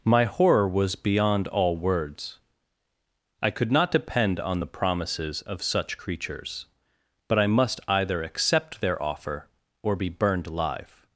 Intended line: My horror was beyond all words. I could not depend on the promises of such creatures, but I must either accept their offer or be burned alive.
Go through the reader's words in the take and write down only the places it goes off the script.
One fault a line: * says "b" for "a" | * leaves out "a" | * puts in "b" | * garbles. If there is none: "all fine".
all fine